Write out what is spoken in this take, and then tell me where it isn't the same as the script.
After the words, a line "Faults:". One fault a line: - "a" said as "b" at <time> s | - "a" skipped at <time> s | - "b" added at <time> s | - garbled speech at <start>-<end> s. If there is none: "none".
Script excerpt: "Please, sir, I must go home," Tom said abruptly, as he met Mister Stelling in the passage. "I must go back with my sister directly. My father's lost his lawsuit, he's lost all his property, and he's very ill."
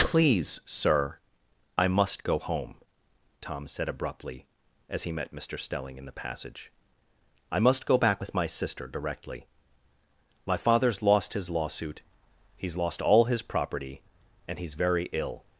"Please, sir, I must go home," Tom said abruptly, as he met Mister Stelling in the passage. "I must go back with my sister directly. My father's lost his lawsuit, he's lost all his property, and he's very ill."
Faults:
none